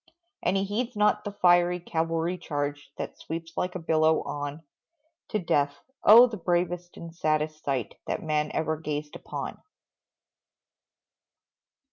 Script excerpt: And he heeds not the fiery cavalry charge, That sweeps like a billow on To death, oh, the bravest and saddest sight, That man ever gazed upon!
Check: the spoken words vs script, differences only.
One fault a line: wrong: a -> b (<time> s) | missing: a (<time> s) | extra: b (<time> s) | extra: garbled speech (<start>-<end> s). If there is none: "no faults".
no faults